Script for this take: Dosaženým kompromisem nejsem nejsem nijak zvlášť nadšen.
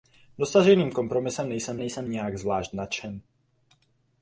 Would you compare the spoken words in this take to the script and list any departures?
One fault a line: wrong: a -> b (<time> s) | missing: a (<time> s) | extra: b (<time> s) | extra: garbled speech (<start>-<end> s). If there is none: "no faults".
no faults